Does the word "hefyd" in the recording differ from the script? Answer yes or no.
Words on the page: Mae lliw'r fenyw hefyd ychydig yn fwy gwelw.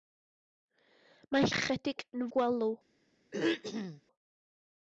yes